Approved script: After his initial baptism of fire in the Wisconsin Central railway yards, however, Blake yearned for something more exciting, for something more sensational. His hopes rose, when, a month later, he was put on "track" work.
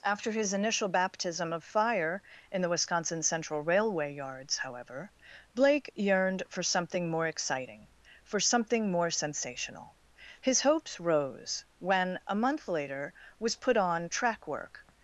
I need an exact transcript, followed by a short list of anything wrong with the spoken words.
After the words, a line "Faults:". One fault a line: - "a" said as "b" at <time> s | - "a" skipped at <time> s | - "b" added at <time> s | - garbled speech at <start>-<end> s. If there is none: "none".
After his initial baptism of fire in the Wisconsin Central railway yards, however, Blake yearned for something more exciting, for something more sensational. His hopes rose, when, a month later, was put on "track" work.
Faults:
- "he" skipped at 13.1 s